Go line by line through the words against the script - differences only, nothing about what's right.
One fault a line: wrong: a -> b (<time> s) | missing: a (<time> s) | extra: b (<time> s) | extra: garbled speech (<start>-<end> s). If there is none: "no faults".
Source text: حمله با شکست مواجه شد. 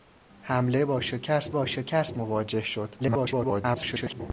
extra: با شکست (1.5 s)
extra: garbled speech (3.0-4.2 s)